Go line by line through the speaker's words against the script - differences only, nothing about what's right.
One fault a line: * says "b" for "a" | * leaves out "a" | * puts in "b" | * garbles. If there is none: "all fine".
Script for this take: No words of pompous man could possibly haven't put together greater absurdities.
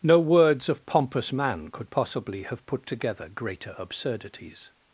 * says "have" for "haven't"